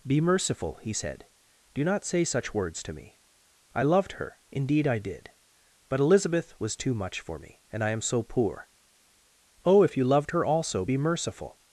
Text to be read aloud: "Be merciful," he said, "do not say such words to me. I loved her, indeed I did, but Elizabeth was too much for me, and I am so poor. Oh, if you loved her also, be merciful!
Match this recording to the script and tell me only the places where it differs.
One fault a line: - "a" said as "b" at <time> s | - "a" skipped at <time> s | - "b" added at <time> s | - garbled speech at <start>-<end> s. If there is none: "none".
none